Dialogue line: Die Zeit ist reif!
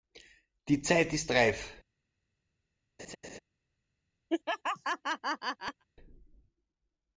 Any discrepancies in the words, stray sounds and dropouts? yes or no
yes